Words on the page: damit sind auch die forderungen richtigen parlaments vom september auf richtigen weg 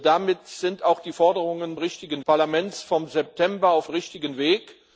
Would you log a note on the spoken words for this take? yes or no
no